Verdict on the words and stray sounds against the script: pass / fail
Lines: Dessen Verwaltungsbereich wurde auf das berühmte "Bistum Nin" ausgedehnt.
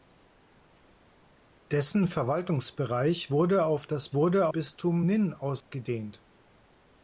fail